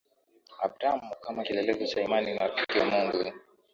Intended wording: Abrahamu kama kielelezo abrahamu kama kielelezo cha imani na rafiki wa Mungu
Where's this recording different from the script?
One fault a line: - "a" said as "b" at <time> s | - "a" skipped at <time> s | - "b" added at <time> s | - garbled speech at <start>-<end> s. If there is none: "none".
- "abrahamu kama kielelezo" skipped at 1.9 s